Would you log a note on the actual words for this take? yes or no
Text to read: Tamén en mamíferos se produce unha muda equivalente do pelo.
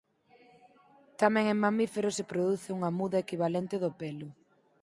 no